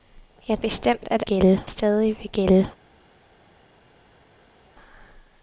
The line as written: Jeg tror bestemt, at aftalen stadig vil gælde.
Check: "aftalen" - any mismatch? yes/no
yes